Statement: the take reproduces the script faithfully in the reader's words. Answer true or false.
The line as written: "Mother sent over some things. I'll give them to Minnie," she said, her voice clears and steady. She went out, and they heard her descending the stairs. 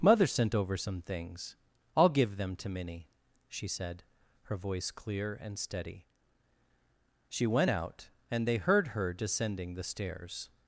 false